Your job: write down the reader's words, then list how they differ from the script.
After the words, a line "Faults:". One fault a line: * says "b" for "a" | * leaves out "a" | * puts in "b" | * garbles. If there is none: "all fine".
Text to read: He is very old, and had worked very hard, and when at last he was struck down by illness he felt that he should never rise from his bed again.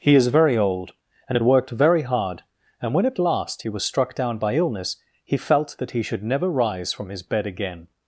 He is very old, and had worked very hard, and when at last he was struck down by illness he felt that he should never rise from his bed again.
Faults:
all fine